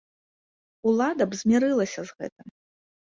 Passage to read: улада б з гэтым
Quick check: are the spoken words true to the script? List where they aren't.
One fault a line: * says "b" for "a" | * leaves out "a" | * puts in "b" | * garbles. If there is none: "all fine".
* puts in "змірылася"